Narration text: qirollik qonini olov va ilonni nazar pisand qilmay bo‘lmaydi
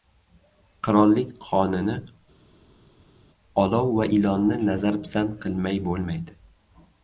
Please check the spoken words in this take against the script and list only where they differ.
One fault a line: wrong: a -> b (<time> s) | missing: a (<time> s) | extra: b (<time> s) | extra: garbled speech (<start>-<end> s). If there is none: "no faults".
no faults